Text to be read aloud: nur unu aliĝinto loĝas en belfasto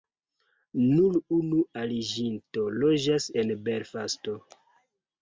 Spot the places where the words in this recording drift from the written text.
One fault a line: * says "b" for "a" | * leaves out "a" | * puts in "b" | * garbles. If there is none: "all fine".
all fine